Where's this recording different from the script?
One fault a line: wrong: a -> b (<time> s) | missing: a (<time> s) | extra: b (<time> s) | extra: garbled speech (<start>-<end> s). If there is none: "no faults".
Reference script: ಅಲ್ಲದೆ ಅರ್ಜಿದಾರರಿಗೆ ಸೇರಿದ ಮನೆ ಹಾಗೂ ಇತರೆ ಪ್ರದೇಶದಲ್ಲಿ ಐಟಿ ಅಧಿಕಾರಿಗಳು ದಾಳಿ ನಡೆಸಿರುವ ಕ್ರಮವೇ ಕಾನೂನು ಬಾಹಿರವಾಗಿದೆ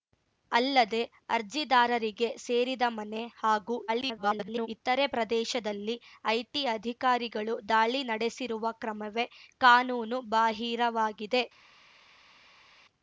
extra: garbled speech (3.9-4.7 s)